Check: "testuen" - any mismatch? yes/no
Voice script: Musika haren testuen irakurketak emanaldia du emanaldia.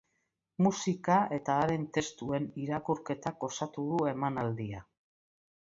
no